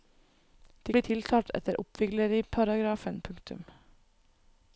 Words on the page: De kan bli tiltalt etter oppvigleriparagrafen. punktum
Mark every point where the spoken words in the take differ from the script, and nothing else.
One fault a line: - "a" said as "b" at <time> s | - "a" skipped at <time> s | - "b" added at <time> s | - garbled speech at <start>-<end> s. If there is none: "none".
- "kan" skipped at 0.9 s